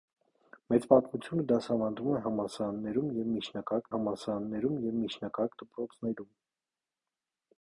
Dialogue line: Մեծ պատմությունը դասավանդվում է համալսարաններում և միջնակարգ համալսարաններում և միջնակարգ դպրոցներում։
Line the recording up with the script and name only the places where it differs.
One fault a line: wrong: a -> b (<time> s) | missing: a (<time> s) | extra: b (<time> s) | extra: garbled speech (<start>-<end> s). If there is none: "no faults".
no faults